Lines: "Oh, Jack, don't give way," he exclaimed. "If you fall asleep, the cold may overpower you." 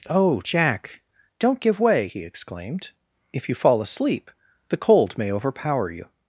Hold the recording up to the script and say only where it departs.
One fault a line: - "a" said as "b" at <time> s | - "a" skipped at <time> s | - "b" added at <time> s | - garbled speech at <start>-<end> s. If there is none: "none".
none